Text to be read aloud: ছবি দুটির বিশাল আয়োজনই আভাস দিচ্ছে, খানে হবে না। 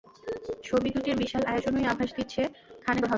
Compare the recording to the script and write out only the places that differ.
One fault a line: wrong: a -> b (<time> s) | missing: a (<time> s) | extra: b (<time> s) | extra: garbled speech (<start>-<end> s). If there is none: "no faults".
no faults